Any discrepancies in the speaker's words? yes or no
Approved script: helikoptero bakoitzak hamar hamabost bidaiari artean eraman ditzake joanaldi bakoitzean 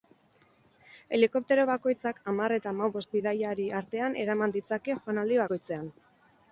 yes